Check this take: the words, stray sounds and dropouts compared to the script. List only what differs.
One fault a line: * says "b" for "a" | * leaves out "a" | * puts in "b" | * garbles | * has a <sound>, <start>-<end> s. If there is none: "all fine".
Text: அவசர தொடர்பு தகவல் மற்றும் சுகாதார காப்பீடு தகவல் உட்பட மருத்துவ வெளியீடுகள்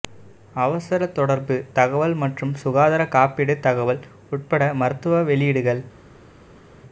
all fine